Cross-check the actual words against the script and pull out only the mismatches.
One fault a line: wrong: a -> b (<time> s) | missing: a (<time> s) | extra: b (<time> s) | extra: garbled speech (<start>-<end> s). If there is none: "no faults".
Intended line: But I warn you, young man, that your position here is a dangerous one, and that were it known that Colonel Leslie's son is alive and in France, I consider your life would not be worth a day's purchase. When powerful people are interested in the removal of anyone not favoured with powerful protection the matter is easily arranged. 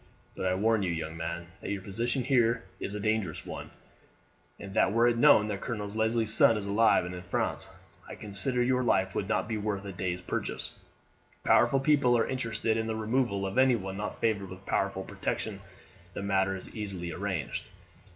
missing: When (10.7 s)